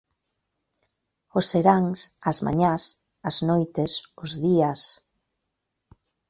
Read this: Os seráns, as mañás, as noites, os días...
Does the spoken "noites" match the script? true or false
true